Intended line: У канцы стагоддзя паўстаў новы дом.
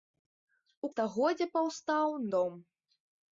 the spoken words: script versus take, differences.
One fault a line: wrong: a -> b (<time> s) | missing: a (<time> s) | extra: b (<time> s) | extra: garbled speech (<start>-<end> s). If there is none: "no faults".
missing: канцы (0.9 s)
missing: новы (2.1 s)